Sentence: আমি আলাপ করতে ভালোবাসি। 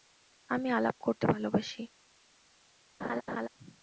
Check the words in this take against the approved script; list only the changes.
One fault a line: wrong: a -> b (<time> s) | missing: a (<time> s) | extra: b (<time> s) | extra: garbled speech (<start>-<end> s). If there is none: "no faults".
no faults